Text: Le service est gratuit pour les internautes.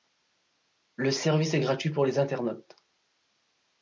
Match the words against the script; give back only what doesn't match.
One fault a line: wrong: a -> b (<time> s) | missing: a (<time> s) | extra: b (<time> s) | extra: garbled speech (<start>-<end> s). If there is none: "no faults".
no faults